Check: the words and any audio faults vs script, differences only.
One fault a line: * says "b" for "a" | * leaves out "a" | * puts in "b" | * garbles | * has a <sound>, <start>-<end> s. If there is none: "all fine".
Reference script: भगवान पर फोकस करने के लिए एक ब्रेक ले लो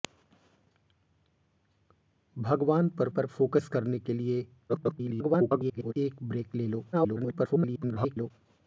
* puts in "पर"
* garbles
* garbles